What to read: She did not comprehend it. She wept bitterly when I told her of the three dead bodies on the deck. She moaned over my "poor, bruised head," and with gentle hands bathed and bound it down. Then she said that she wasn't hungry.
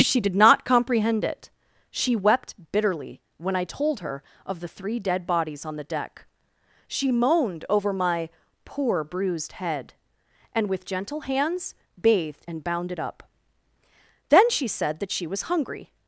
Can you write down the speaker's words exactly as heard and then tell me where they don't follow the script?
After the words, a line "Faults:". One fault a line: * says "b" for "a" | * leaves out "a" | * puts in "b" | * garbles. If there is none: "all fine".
She did not comprehend it. She wept bitterly when I told her of the three dead bodies on the deck. She moaned over my "poor, bruised head," and with gentle hands bathed and bound it up. Then she said that she was hungry.
Faults:
* says "up" for "down"
* says "was" for "wasn't"